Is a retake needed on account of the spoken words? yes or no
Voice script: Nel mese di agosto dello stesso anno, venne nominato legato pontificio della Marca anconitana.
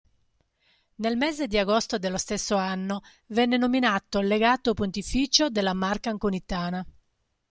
no